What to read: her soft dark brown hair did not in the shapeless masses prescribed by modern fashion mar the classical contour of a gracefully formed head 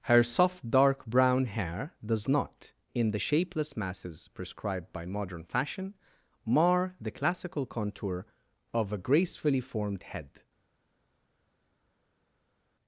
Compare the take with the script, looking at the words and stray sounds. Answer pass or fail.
fail